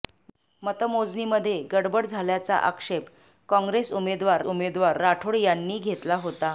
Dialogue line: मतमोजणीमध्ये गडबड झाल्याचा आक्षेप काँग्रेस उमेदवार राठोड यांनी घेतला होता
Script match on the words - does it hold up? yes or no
no